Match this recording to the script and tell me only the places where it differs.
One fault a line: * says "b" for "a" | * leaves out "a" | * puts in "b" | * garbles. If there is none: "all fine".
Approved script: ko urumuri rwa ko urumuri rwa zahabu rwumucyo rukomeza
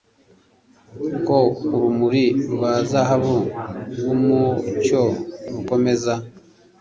* leaves out "ko urumuri rwa"